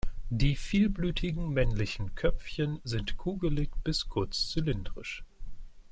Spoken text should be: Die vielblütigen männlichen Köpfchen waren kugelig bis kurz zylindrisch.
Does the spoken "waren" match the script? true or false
false